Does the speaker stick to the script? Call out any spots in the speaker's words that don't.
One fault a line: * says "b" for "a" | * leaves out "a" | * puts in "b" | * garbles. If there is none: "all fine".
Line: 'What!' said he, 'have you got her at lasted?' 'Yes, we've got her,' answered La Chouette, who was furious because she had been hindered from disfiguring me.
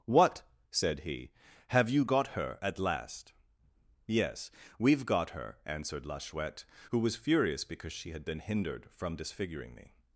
* says "last" for "lasted"